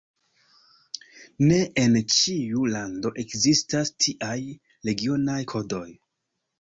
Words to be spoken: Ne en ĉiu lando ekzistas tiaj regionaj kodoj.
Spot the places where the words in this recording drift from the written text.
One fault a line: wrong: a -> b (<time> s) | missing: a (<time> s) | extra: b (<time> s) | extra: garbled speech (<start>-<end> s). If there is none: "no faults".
no faults